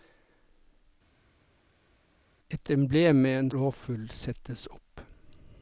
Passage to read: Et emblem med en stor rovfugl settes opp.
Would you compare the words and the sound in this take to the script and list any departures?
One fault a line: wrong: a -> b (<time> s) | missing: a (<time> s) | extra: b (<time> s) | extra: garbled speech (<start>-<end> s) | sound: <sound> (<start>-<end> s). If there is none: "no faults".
missing: stor (3.5 s)